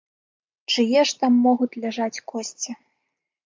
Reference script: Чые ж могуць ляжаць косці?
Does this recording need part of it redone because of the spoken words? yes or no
yes